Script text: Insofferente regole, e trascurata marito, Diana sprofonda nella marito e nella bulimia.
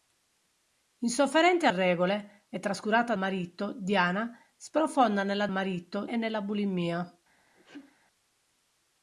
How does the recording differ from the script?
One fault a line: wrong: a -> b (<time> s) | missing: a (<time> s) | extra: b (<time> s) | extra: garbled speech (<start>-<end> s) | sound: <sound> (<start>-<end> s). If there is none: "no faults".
sound: sneeze (7.5-8.0 s)